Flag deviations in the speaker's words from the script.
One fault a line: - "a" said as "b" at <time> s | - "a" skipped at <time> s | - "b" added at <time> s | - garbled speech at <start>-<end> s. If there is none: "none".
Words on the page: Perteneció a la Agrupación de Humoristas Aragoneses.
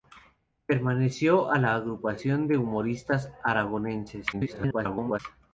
- garbled speech at 4.3-5.2 s